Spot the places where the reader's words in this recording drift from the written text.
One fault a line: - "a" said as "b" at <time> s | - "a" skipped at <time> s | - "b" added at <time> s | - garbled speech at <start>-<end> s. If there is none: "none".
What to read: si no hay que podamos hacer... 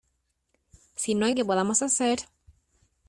none